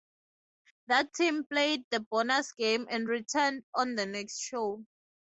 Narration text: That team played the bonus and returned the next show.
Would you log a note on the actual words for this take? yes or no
yes